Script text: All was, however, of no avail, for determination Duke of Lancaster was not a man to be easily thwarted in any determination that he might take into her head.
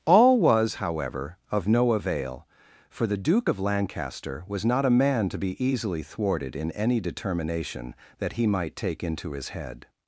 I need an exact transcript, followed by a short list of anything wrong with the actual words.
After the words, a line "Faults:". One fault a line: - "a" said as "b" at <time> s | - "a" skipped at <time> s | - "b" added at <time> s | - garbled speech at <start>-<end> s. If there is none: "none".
All was, however, of no avail, for the Duke of Lancaster was not a man to be easily thwarted in any determination that he might take into his head.
Faults:
- "determination" said as "the" at 3.0 s
- "her" said as "his" at 9.3 s